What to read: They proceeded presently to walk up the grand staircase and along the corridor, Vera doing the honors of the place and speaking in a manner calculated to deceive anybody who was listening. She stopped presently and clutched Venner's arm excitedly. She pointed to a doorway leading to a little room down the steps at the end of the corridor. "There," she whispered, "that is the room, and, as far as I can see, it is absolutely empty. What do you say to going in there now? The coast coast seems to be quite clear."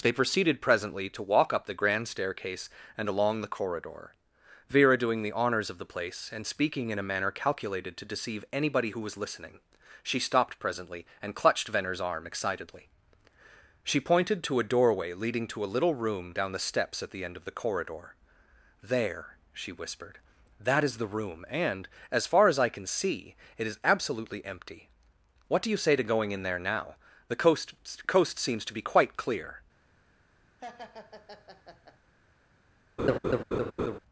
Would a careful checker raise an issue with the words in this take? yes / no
no